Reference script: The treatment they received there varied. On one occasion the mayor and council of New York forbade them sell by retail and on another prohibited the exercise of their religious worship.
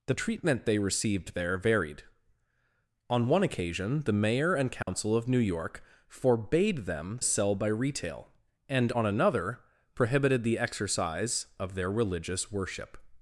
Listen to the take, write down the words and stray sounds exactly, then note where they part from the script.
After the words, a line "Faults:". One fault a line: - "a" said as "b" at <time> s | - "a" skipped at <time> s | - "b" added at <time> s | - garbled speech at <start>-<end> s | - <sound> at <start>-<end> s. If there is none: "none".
The treatment they received there varied. On one occasion the mayor and council of New York forbade them sell by retail and on another prohibited the exercise of their religious worship.
Faults:
- dropout at 4.8-4.9 s